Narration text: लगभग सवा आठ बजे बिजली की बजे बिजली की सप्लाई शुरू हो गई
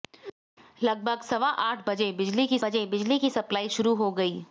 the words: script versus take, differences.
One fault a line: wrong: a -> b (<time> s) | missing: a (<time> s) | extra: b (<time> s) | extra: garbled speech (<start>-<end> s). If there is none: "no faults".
no faults